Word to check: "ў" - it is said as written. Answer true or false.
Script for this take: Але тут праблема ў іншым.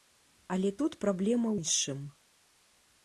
false